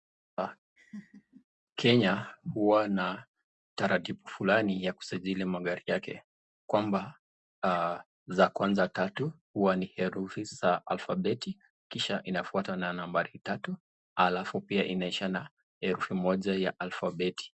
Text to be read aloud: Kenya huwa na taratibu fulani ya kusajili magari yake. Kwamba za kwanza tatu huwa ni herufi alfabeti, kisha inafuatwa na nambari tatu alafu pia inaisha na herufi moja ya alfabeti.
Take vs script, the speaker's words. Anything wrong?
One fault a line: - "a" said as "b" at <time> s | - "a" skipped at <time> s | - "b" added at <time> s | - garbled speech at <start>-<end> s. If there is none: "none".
- "za" added at 10.4 s